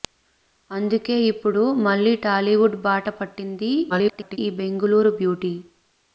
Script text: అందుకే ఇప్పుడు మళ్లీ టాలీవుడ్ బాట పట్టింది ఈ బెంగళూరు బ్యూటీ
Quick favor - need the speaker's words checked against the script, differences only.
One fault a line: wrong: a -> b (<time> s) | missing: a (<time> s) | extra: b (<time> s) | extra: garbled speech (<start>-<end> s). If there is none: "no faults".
extra: garbled speech (3.9-4.4 s)